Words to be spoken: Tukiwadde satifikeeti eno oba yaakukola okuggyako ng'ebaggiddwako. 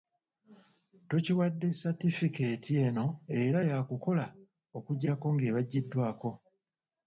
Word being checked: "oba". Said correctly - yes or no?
no